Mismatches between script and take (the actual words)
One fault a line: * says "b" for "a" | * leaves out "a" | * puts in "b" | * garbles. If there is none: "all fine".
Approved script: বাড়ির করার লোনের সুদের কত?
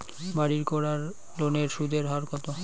* puts in "হার"